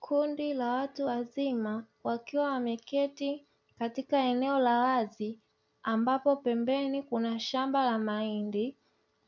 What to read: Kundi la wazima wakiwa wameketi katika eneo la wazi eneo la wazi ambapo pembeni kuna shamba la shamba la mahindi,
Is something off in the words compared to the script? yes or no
yes